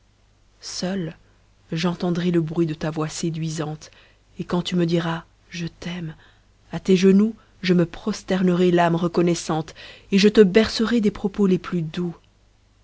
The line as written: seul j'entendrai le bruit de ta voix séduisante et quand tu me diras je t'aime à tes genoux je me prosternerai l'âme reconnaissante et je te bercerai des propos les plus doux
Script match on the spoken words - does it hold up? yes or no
yes